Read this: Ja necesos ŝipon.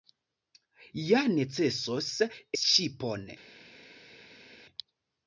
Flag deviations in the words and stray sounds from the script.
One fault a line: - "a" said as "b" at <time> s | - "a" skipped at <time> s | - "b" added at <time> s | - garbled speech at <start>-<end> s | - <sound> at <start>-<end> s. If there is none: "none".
none